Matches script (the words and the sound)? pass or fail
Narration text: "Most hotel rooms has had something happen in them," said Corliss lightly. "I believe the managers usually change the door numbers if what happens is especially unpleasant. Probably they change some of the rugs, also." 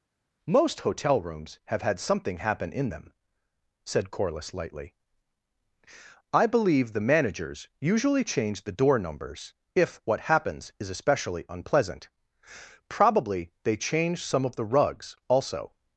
fail